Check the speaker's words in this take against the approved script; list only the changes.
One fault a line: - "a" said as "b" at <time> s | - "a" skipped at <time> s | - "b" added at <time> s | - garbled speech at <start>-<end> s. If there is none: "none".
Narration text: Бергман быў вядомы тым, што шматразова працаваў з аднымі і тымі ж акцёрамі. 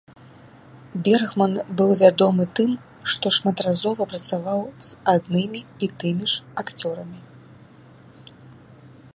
none